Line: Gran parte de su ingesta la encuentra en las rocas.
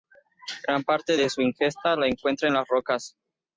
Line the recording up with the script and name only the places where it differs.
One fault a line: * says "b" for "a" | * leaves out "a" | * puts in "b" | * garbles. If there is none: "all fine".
all fine